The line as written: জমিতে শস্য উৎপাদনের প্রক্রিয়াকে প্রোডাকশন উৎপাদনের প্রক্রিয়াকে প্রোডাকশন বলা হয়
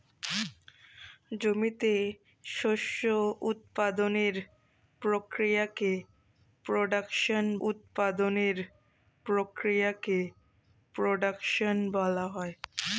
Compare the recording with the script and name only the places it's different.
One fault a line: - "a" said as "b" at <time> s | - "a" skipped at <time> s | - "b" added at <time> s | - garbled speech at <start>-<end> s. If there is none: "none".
none